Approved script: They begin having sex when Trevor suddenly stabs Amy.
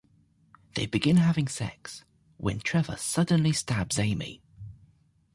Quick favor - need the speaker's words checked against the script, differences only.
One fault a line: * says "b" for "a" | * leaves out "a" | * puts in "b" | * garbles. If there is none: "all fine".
all fine